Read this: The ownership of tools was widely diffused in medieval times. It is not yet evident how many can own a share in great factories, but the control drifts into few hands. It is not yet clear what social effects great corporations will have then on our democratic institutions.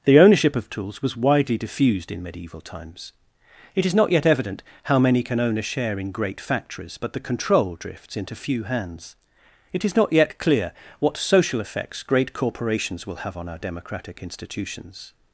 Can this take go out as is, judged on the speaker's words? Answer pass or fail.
fail